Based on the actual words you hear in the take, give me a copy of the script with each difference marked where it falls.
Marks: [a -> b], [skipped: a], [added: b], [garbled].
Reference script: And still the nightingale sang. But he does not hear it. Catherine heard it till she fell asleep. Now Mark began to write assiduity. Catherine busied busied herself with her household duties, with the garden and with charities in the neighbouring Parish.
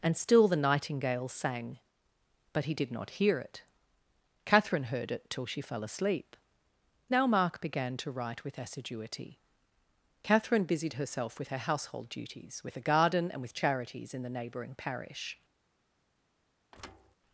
And still the nightingale sang. But he [does -> did] not hear it. Catherine heard it till she fell asleep. Now Mark began to write [added: with] assiduity. Catherine busied [skipped: busied] herself with her household duties, with the garden and with charities in the neighbouring Parish.